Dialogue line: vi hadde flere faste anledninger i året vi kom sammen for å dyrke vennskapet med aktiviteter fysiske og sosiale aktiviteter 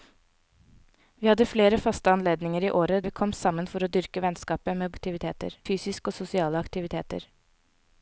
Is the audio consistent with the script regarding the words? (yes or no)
yes